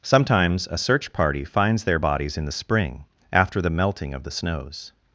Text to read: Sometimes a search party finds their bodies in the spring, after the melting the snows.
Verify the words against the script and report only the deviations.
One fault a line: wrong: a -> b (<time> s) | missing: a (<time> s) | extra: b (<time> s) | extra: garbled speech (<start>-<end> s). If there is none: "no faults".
extra: of (4.1 s)